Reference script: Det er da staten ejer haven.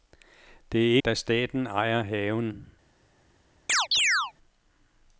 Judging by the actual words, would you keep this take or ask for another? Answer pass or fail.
pass